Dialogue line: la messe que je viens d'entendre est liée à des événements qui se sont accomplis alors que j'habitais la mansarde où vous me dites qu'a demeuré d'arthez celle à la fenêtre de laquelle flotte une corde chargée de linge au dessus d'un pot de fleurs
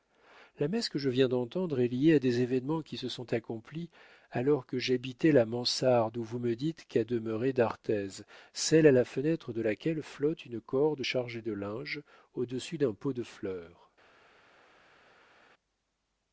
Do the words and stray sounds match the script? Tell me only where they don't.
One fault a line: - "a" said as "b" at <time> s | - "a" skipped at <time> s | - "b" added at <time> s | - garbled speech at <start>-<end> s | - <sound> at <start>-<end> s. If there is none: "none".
none